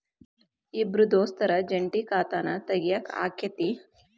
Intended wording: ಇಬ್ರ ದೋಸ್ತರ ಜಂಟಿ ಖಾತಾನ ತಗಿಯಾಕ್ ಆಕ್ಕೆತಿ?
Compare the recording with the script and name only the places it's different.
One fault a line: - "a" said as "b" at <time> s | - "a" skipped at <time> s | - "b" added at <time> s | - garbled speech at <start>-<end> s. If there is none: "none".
none